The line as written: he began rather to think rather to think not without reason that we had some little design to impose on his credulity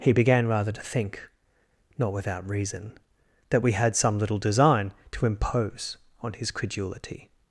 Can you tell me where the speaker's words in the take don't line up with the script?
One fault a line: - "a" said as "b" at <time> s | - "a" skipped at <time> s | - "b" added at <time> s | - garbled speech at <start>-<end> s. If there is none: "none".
- "rather to think" skipped at 1.3 s